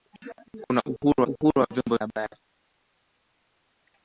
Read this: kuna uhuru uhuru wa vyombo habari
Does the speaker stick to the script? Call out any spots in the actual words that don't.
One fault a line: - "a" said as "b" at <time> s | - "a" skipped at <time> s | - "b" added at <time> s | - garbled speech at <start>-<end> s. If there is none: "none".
none